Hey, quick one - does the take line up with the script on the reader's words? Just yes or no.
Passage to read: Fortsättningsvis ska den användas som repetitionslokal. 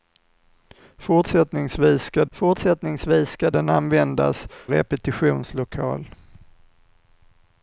no